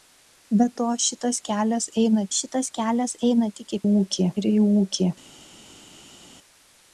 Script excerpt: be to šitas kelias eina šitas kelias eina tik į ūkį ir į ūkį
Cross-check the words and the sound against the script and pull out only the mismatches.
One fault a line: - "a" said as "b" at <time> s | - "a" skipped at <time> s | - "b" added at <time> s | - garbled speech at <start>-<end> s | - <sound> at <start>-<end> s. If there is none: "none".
none